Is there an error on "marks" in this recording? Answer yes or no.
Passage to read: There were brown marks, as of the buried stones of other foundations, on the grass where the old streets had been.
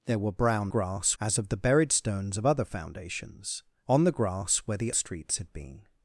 yes